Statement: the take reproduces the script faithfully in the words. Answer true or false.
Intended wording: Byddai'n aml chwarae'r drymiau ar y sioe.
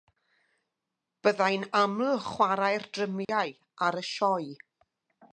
true